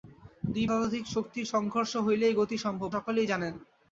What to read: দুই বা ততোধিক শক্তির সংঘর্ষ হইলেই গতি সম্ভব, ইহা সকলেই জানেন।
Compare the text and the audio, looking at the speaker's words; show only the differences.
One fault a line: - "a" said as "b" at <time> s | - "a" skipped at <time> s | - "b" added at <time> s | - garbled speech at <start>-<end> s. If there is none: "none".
- "বা" skipped at 0.7 s
- "ইহা" skipped at 2.9 s